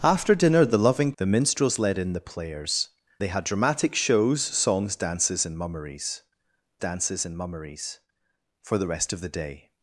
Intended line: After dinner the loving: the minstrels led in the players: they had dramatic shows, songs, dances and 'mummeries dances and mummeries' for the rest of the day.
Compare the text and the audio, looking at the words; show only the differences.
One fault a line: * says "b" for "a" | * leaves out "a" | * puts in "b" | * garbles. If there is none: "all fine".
all fine